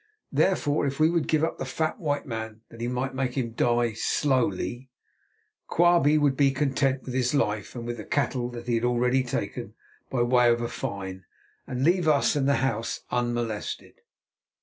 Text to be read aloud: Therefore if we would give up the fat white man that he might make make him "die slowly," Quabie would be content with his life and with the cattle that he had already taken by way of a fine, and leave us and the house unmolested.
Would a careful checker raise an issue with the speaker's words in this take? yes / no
yes